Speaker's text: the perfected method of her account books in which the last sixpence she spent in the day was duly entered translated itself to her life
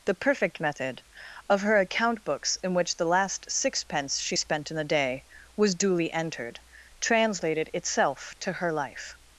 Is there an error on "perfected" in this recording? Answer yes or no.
yes